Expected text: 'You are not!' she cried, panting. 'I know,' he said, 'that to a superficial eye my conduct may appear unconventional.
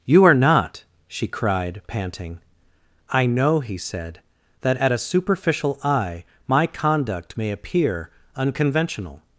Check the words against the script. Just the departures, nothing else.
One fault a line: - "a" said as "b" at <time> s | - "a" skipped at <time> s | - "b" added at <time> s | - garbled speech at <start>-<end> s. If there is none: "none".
- "to" said as "at" at 4.7 s